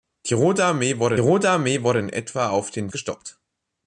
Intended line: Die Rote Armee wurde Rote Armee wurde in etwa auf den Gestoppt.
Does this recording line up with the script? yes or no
yes